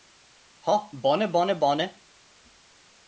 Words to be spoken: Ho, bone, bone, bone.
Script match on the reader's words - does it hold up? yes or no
yes